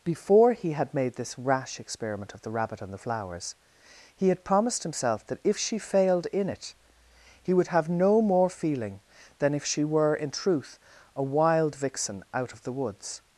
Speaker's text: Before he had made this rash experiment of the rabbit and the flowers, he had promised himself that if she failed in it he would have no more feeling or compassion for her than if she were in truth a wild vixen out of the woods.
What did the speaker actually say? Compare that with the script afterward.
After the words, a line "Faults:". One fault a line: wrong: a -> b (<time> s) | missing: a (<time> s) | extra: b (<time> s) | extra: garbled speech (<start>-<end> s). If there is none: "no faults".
Before he had made this rash experiment of the rabbit and the flowers, he had promised himself that if she failed in it he would have no more feeling than if she were in truth a wild vixen out of the woods.
Faults:
missing: or compassion for her (9.0 s)